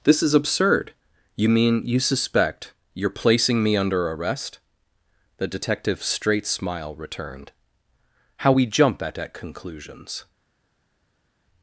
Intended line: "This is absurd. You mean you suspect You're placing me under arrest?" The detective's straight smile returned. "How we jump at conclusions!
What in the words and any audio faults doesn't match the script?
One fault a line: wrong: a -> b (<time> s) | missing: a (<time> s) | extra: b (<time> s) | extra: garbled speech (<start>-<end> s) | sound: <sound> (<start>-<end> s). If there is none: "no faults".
extra: at (9.2 s)